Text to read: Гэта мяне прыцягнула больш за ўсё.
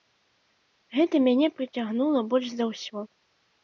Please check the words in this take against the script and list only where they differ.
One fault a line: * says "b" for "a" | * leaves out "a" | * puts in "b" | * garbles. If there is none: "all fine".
all fine